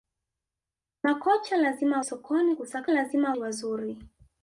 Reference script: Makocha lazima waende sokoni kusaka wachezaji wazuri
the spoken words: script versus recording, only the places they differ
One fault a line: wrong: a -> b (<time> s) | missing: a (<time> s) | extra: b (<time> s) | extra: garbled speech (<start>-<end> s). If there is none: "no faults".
missing: waende (2.0 s)
wrong: wachezaji -> lazima (2.9 s)